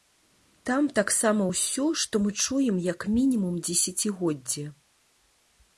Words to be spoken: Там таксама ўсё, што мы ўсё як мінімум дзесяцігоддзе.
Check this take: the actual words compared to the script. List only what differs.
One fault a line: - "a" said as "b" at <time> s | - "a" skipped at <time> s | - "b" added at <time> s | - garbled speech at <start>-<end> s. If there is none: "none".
- "ўсё" said as "чуем" at 2.4 s